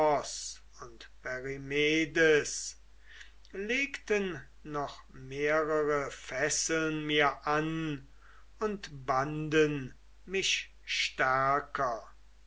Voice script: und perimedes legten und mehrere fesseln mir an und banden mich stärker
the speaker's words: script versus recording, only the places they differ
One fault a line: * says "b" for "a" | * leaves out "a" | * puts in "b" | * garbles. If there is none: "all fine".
* says "noch" for "und"